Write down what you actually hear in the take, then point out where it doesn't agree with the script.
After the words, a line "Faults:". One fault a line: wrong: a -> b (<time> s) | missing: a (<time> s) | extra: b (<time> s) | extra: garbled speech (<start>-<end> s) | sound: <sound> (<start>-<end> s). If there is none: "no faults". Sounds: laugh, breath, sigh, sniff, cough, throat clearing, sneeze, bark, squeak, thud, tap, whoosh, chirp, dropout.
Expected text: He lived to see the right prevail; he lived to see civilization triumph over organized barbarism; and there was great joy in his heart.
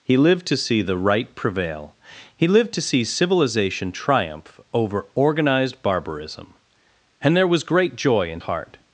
He lived to see the right prevail; he lived to see civilization triumph over organized barbarism; and there was great joy in heart.
Faults:
missing: his (8.4 s)